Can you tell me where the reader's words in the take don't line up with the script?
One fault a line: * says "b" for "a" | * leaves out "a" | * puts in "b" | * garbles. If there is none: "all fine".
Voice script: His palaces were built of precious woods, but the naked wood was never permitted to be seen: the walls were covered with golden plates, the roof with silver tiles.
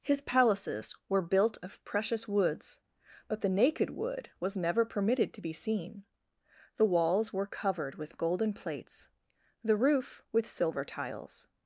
all fine